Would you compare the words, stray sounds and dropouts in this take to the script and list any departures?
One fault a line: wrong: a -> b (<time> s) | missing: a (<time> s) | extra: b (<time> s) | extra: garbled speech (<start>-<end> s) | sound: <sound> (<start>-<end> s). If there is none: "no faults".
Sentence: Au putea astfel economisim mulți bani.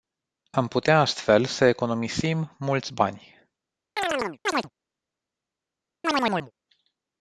wrong: Au -> Am (0.5 s)
extra: să (1.4 s)
sound: chirp (4.0-4.7 s)
sound: chirp (6.0-6.5 s)